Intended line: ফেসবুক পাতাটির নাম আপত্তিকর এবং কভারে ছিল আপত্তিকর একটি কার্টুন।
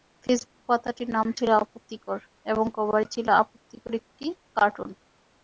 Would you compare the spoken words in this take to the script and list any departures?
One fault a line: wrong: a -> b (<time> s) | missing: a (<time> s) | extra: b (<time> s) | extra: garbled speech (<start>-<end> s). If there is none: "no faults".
extra: ছিল (1.4 s)